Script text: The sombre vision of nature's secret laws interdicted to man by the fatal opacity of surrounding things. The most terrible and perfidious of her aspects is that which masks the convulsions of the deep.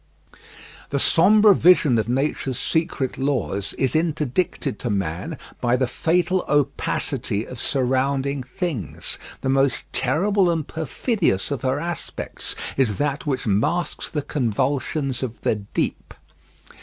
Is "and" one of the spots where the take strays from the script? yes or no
no